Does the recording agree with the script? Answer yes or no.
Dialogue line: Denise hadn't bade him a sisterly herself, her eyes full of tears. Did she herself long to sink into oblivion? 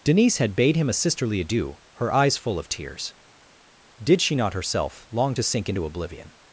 no